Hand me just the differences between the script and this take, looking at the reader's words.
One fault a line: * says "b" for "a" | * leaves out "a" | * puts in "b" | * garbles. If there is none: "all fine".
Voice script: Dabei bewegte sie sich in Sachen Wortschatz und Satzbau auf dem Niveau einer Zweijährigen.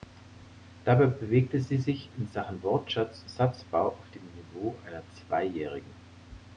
* leaves out "und"